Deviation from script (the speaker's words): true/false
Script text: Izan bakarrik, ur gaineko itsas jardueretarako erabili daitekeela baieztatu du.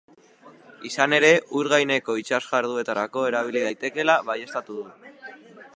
true